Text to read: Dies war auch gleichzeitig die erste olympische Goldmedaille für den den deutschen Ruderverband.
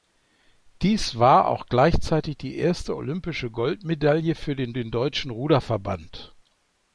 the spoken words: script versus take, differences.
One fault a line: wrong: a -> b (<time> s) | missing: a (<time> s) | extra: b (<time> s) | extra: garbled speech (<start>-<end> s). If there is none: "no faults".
no faults